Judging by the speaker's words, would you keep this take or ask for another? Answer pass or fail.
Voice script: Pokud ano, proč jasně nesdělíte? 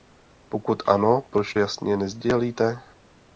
pass